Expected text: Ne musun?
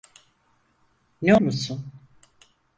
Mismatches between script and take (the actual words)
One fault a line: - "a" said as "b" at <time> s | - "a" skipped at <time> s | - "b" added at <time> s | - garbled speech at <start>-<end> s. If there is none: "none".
none